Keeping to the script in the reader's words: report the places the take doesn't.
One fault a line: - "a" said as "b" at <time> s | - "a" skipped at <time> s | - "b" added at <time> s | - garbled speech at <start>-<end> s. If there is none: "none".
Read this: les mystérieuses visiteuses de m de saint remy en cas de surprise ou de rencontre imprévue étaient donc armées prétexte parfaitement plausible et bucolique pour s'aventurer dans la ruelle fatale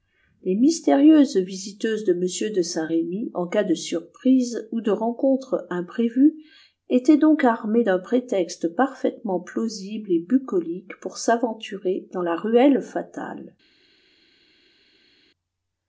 - "d'un" added at 7.8 s